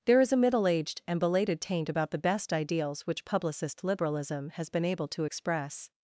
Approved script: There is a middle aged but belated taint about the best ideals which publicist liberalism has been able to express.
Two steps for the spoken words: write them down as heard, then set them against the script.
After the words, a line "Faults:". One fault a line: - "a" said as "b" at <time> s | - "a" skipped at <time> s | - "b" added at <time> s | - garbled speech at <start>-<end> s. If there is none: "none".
There is a middle aged and belated taint about the best ideals which publicist liberalism has been able to express.
Faults:
- "but" said as "and" at 1.1 s